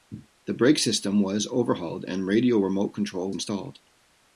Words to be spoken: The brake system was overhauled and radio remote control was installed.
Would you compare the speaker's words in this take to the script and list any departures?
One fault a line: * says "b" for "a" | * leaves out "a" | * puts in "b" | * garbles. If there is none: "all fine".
* leaves out "was"